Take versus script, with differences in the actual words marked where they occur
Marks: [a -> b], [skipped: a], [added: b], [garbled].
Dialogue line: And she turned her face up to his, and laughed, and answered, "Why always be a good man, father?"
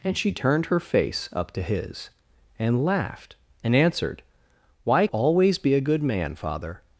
And she turned her face up to his, and laughed, and answered, "Why always be a good man, father?"